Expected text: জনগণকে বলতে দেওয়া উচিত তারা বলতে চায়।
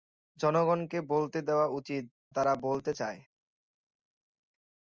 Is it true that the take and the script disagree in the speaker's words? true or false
false